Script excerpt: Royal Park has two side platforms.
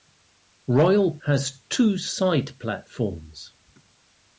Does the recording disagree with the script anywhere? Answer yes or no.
yes